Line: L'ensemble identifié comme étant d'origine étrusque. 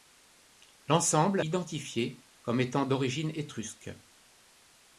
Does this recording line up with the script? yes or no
yes